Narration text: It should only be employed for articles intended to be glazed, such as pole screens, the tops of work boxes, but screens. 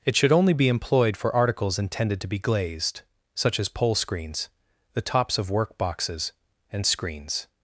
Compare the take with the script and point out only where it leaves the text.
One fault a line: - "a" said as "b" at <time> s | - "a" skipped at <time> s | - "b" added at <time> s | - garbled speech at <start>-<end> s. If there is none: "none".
- "but" said as "and" at 6.7 s